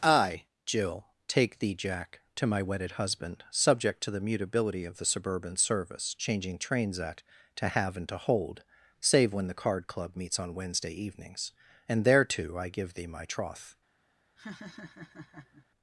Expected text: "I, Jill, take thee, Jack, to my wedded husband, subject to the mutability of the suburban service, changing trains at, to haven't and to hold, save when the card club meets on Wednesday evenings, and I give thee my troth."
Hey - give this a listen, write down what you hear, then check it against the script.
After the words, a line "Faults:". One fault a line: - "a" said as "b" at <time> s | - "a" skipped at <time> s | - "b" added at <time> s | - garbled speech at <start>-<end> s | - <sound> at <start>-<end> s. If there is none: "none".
"I, Jill, take thee, Jack, to my wedded husband, subject to the mutability of the suburban service, changing trains at, to have and to hold, save when the card club meets on Wednesday evenings, and thereto I give thee my troth."
Faults:
- "haven't" said as "have" at 7.7 s
- "thereto" added at 12.1 s
- laugh at 14.4-15.7 s